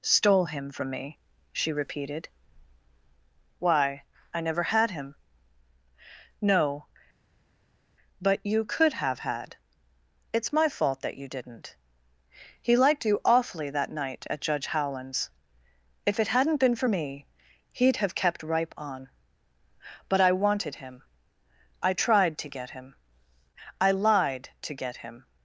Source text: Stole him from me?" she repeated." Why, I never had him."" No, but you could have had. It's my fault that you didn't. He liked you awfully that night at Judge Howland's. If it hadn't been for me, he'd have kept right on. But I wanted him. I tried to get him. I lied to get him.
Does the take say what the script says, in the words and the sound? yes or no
no